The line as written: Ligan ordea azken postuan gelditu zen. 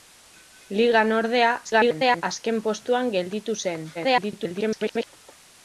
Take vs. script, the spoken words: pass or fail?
fail